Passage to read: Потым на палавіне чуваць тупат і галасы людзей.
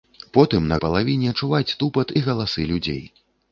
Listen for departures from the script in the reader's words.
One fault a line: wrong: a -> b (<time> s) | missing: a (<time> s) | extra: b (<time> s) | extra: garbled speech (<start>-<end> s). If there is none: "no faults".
no faults